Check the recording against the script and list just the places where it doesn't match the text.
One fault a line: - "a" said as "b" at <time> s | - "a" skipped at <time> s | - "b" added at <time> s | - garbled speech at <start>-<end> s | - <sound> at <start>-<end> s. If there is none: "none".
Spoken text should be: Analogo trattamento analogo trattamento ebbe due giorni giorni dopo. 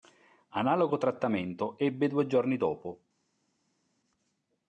- "analogo trattamento" skipped at 1.8 s
- "giorni" skipped at 2.6 s